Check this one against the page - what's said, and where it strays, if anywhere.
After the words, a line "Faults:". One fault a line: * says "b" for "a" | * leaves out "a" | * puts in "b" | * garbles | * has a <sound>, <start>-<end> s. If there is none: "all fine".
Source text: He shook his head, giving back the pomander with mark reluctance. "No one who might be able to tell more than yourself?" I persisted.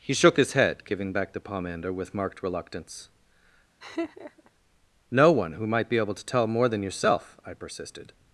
He shook his head, giving back the pomander with marked reluctance. "No one who might be able to tell more than yourself?" I persisted.
Faults:
* says "marked" for "mark"
* has a laugh, 3.8-4.5 s